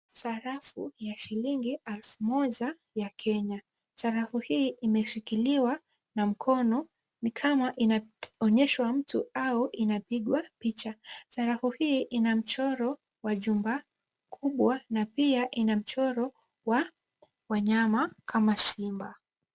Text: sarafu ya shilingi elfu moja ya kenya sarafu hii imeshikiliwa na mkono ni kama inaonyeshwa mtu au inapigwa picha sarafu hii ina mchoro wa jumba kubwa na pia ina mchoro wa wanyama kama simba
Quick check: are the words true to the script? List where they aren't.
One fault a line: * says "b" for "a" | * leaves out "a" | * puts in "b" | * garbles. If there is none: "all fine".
all fine